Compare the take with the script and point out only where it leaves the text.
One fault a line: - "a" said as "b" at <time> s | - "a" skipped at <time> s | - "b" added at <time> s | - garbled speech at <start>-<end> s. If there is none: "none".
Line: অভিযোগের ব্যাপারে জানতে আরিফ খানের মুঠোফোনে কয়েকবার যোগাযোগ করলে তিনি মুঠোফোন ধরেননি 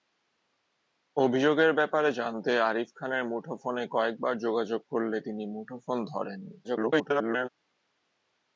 - garbled speech at 6.6-7.5 s